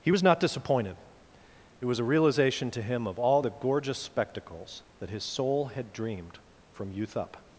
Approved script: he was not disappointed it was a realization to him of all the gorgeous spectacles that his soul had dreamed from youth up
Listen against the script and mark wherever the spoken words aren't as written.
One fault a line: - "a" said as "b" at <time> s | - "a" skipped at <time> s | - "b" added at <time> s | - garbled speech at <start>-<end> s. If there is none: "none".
none